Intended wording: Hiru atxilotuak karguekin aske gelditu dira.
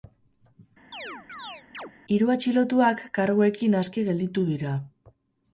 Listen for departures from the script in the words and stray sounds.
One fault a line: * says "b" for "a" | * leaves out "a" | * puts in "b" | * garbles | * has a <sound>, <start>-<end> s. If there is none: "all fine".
* has a chirp, 0.9-1.9 s